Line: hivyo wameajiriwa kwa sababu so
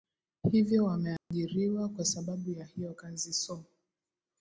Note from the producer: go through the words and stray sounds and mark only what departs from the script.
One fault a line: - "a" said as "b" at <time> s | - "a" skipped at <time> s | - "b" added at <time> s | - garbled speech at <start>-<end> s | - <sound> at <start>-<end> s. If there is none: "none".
- dropout at 1.2-1.3 s
- "ya hiyo kazi" added at 2.5 s